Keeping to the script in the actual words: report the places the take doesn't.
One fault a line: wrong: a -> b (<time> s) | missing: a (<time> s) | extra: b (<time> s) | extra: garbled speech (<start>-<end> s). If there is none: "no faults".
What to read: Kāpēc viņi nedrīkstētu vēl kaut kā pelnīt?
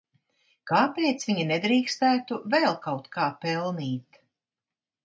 no faults